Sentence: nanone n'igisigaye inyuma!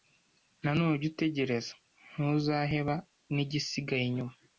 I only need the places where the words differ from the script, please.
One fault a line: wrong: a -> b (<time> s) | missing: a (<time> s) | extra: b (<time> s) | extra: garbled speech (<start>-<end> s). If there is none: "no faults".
extra: ujye utegereza ntuzaheba (0.9 s)